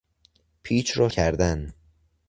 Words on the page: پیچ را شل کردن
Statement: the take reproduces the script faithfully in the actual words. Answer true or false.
false